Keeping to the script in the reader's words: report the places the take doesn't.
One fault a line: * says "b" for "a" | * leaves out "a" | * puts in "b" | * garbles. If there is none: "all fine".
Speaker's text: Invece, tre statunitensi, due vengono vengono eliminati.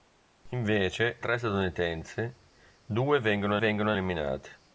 all fine